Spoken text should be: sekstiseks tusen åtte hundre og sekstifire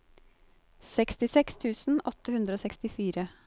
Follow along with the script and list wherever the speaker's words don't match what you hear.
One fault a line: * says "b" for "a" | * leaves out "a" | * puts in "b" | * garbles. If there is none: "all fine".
all fine